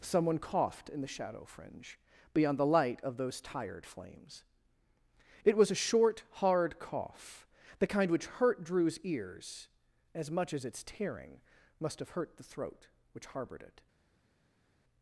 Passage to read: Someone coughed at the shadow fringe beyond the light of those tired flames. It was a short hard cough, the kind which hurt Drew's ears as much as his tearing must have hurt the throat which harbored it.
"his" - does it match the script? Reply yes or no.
no